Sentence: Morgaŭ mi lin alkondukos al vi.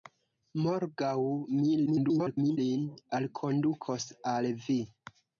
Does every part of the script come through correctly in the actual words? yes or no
no